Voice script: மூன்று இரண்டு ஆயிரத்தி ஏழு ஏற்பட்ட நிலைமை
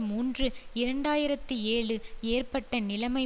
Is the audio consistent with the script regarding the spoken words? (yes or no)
yes